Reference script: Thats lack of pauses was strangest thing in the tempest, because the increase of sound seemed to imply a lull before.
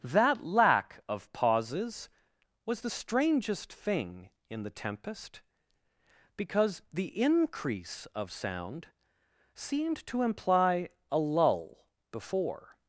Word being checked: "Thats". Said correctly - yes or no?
no